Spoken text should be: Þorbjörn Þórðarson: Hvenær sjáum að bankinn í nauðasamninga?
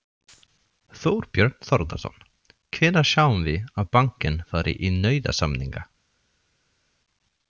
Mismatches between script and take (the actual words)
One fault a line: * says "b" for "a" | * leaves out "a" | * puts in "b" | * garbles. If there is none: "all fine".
* puts in "við"
* puts in "fari"